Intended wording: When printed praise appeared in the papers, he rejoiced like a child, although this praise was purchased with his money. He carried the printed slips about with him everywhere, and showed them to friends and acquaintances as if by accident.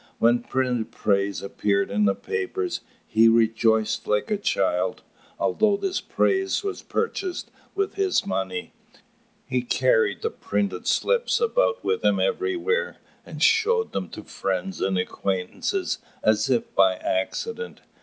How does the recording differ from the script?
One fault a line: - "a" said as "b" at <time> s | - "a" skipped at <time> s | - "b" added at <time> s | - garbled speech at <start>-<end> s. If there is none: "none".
none